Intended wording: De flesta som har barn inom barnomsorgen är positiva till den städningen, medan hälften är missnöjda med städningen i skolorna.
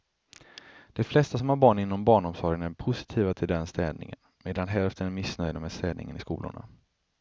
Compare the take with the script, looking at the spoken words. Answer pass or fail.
pass